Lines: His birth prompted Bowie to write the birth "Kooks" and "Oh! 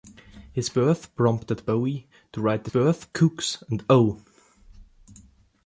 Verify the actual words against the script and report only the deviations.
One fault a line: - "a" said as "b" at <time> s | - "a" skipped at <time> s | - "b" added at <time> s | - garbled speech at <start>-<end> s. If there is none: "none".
none